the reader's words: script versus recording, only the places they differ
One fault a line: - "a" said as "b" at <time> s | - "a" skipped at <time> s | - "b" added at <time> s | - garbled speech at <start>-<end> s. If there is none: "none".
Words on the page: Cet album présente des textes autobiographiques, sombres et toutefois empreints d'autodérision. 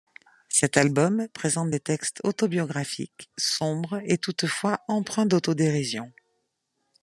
none